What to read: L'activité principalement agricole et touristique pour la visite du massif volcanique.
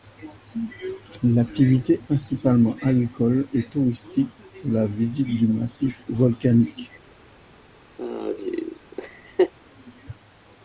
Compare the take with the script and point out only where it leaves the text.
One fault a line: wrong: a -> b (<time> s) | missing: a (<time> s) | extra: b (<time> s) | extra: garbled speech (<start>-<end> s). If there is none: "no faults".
no faults